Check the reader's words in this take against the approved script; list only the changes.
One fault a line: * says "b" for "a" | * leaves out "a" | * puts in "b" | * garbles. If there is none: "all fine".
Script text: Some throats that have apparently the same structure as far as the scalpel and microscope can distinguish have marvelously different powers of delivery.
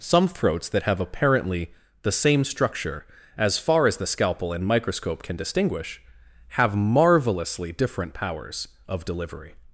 all fine